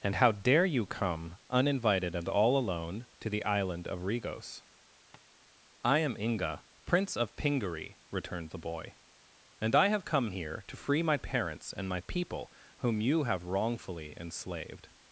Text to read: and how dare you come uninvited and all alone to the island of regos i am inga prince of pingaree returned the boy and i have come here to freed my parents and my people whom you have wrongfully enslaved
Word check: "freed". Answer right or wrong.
wrong